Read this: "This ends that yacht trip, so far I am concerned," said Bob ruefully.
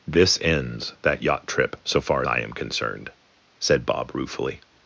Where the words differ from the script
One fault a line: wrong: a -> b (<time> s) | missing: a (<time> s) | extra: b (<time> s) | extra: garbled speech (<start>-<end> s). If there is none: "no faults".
no faults